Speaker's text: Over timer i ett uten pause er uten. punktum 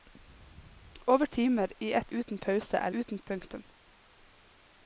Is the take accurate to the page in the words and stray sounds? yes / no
yes